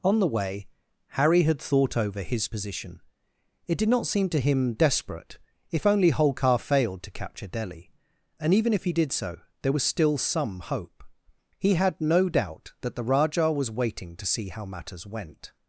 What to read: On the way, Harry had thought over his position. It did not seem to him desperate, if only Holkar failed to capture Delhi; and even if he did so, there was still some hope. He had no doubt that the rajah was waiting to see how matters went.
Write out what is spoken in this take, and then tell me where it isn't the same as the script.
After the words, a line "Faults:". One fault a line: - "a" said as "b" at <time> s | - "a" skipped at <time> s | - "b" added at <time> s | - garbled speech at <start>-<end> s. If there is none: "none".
On the way, Harry had thought over his position. It did not seem to him desperate, if only Holkar failed to capture Delhi; and even if he did so, there was still some hope. He had no doubt that the rajah was waiting to see how matters went.
Faults:
none